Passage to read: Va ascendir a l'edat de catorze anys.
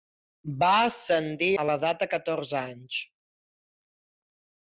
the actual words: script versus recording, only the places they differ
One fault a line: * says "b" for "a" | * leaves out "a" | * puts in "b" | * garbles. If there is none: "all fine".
all fine